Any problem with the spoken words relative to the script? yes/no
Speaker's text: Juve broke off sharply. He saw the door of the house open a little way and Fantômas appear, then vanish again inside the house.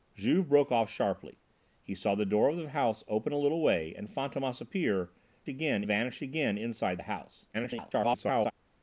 yes